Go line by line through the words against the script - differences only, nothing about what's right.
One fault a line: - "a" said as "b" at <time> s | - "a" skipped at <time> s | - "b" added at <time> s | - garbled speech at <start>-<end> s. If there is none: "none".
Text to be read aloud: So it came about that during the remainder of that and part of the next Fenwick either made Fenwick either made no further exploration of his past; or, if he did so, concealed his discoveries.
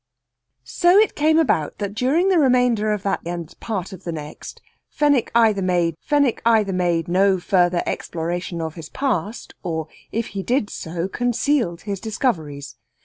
none